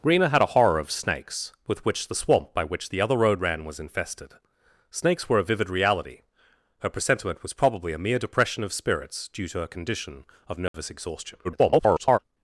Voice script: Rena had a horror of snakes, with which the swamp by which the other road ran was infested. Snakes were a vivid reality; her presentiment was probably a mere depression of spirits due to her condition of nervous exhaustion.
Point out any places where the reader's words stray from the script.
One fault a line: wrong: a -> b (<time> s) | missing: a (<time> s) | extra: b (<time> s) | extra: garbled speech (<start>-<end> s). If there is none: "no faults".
extra: garbled speech (11.4-12.2 s)